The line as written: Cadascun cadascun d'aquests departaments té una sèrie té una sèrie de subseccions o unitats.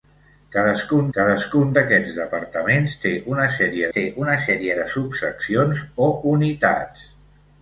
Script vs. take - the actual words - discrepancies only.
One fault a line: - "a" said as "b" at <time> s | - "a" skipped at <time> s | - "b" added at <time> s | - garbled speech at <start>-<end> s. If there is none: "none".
none